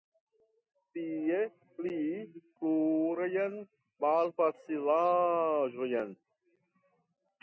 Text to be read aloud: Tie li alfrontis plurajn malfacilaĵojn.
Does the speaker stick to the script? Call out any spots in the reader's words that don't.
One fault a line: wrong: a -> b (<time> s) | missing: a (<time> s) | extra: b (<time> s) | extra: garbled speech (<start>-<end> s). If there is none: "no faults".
missing: alfrontis (2.0 s)